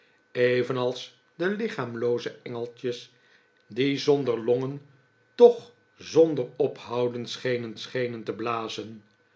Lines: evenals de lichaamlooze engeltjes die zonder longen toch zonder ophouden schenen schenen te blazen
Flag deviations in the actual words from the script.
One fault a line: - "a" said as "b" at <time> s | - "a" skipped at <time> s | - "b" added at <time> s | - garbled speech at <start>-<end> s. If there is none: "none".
none